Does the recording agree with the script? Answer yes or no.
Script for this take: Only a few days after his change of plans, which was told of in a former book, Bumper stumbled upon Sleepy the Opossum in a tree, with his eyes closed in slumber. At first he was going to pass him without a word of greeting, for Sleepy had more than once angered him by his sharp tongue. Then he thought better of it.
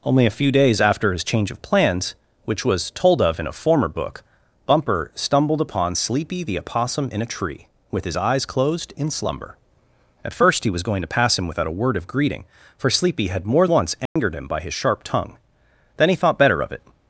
no